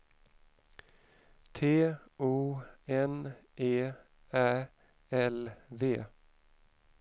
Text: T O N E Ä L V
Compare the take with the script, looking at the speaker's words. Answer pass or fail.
pass